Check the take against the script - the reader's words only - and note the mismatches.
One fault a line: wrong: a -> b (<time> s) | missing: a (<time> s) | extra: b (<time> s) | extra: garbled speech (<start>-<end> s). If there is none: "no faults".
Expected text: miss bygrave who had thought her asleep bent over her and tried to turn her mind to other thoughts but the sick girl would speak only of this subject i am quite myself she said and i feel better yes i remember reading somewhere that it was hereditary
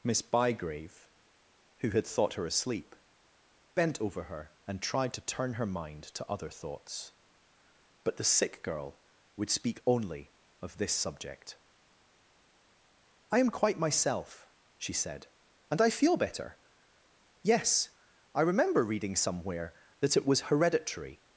no faults